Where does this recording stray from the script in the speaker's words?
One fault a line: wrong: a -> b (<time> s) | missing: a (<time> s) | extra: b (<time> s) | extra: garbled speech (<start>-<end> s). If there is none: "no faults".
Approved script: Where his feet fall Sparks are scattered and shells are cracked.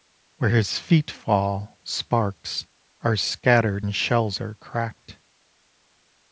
no faults